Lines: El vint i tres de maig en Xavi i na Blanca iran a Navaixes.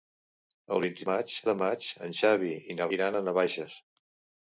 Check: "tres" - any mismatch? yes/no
yes